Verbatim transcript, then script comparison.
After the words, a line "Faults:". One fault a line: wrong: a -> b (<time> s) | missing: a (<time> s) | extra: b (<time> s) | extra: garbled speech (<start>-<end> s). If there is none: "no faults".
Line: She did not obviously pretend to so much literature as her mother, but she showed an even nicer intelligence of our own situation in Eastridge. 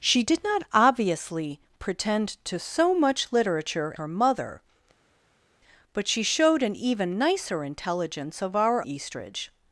She did not obviously pretend to so much literature her mother, but she showed an even nicer intelligence of our Eastridge.
Faults:
missing: as (3.9 s)
missing: own situation in (8.9 s)